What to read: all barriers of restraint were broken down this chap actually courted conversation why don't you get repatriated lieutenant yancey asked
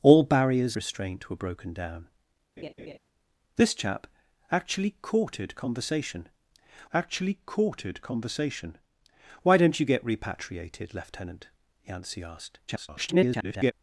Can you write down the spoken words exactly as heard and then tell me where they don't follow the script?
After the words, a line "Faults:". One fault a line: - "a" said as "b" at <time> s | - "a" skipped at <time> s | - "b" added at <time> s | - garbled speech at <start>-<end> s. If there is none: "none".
all barriers restraint were broken down this chap actually courted conversation actually courted conversation why don't you get repatriated lieutenant yancey asked [garbled]
Faults:
- "of" skipped at 0.8 s
- "actually courted conversation" added at 6.9 s
- garbled speech at 12.7-13.7 s